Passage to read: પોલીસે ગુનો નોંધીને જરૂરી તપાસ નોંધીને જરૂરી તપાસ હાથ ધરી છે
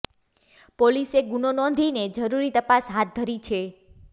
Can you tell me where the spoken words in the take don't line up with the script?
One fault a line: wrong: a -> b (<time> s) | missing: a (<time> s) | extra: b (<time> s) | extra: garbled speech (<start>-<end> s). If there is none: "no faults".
missing: નોંધીને જરૂરી તપાસ (2.9 s)